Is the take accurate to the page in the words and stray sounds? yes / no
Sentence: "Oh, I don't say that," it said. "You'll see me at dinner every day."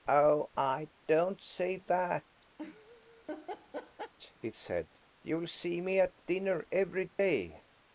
no